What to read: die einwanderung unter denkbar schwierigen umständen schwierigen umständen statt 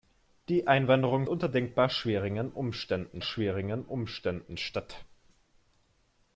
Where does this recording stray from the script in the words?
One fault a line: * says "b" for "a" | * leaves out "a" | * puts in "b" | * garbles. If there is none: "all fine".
all fine